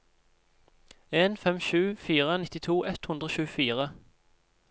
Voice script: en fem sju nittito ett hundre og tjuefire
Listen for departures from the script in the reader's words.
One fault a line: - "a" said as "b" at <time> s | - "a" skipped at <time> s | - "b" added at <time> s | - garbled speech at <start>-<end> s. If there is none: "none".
- "fire" added at 2.0 s